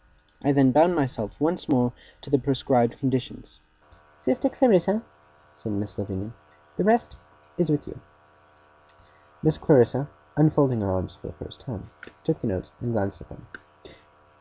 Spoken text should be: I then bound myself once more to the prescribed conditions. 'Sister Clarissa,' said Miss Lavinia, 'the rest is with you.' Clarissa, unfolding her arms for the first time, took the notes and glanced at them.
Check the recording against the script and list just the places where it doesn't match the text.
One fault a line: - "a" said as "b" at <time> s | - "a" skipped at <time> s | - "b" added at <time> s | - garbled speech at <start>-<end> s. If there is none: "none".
- "Miss" added at 9.4 s